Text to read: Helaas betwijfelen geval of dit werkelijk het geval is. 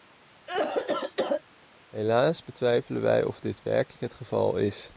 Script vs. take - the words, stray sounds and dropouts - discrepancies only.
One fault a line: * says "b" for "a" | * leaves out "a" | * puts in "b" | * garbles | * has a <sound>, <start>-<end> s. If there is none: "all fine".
* has a cough, 0.5-1.4 s
* says "wij" for "geval"